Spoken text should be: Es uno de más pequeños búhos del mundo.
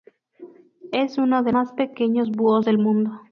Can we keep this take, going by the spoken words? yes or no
yes